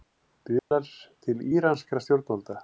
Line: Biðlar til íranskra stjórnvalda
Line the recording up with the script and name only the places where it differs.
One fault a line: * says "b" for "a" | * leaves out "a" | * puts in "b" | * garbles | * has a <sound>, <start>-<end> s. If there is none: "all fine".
* has a dropout, 0.6-0.7 s